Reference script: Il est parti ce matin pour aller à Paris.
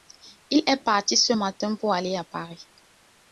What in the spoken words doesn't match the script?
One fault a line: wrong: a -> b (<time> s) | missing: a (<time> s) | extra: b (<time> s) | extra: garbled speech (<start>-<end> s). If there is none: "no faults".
no faults